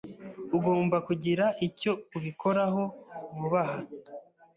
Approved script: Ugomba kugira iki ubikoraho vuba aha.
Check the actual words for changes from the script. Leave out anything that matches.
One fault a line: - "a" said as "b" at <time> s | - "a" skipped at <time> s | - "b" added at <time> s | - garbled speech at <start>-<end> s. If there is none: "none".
- "iki" said as "icyo" at 1.7 s